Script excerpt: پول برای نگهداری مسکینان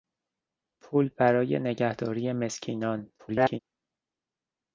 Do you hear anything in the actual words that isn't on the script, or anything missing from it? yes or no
yes